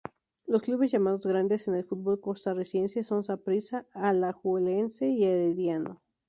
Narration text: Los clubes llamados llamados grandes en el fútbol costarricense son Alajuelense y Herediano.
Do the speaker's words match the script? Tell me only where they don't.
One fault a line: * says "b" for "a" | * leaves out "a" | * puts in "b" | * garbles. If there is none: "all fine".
* leaves out "llamados"
* puts in "Saprissa"